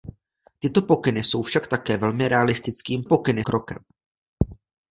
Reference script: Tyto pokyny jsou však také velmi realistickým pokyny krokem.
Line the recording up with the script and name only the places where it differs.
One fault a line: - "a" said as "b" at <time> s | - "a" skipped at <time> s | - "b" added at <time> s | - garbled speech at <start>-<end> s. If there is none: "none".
none